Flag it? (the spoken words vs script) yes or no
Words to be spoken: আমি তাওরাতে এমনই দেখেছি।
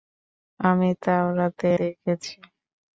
yes